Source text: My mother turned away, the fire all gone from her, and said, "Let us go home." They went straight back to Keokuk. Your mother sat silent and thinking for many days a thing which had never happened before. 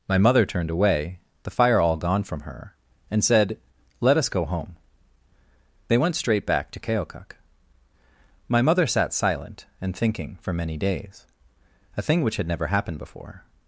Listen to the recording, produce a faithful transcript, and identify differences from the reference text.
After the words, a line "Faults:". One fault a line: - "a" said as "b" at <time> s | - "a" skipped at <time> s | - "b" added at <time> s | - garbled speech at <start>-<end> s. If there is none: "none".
My mother turned away, the fire all gone from her, and said, "Let us go home." They went straight back to Keokuk. My mother sat silent and thinking for many days a thing which had never happened before.
Faults:
- "Your" said as "My" at 8.5 s